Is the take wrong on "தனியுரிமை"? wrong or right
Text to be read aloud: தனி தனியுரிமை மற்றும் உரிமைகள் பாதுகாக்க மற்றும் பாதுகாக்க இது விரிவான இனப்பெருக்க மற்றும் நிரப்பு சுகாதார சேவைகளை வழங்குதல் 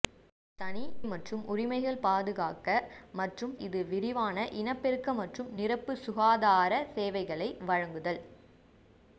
wrong